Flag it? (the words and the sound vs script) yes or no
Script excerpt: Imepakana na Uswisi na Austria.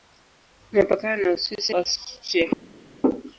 yes